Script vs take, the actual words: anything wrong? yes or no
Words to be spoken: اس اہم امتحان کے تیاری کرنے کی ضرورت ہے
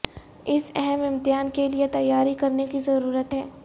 yes